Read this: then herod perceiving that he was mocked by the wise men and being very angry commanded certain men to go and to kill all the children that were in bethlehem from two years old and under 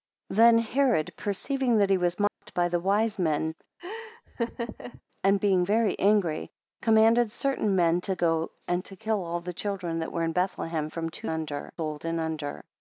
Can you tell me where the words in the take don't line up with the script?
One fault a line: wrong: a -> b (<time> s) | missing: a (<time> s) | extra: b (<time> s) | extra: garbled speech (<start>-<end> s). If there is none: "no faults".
wrong: years -> under (11.3 s)